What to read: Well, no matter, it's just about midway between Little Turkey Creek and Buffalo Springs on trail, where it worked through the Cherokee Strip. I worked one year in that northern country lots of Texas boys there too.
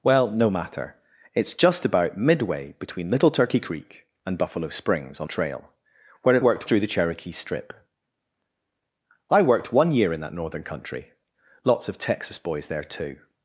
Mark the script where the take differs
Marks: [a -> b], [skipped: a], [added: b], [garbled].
Well, no matter, it's just about midway between Little Turkey Creek and Buffalo Springs on trail, where it worked through the Cherokee Strip. I worked one year in that northern country lots of Texas boys there too.